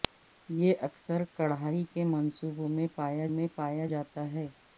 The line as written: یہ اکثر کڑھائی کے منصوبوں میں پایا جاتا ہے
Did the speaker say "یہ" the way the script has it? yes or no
yes